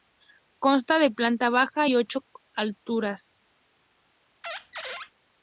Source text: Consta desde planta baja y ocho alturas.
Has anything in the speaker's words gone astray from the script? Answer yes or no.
yes